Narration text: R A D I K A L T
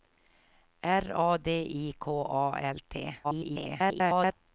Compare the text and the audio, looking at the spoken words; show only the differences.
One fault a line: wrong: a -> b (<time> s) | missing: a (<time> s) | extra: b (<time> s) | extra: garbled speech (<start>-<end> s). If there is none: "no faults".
extra: garbled speech (3.2-4.3 s)